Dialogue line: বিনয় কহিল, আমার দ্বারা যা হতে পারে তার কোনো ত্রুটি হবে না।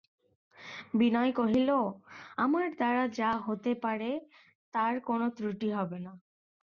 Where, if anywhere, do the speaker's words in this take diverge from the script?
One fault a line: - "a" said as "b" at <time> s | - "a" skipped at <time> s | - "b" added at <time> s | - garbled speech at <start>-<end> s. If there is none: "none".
none